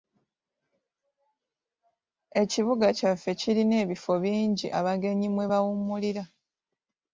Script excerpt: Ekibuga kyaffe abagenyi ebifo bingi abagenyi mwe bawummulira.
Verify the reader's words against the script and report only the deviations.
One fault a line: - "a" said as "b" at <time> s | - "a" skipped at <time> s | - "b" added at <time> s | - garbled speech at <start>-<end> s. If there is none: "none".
- "abagenyi" said as "kirina" at 3.4 s